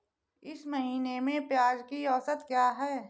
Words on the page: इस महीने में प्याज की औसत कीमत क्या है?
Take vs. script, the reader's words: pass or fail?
fail